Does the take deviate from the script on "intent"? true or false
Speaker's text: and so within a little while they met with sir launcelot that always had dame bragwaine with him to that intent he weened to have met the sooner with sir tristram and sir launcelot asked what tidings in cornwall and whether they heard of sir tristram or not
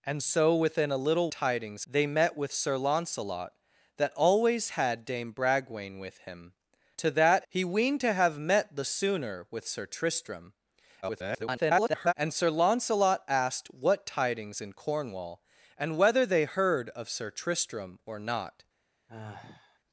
true